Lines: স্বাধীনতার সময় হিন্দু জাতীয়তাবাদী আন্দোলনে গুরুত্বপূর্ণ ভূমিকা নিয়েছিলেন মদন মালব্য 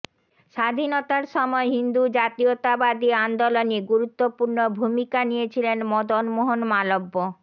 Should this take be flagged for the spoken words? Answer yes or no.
yes